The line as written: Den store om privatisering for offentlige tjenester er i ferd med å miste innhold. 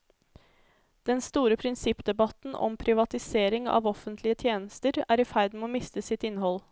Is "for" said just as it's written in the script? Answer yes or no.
no